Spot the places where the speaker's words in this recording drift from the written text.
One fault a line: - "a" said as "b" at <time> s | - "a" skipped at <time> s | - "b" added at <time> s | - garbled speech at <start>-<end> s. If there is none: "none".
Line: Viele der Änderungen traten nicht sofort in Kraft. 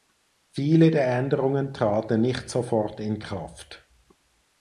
none